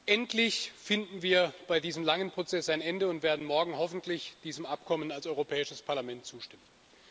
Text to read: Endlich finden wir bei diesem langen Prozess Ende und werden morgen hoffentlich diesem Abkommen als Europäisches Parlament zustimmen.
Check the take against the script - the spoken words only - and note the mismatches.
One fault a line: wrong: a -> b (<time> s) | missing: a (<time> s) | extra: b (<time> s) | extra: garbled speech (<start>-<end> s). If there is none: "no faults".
extra: ein (2.7 s)